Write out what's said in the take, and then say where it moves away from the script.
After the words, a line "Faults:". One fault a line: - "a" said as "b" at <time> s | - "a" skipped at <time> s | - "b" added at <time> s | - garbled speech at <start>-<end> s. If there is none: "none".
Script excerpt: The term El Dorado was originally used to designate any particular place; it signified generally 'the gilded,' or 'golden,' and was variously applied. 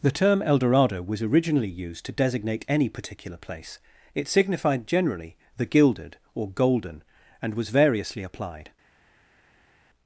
The term El Dorado was originally used to designate any particular place; it signified generally 'the gilded,' or 'golden,' and was variously applied.
Faults:
none